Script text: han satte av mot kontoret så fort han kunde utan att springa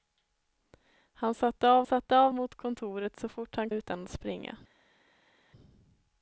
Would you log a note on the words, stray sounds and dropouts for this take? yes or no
yes